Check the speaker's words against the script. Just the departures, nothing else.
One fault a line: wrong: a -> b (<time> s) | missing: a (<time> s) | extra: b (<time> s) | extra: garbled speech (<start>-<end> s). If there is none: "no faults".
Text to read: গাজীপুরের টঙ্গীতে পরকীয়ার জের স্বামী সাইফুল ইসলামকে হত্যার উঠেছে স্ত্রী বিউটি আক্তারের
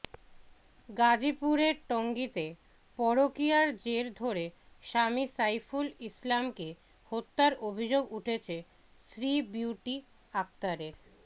extra: ধরে (4.2 s)
extra: অভিযোগ (7.7 s)